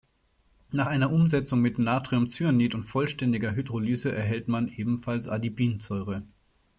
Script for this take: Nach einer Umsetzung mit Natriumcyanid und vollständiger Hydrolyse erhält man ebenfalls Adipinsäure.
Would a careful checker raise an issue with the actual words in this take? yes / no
no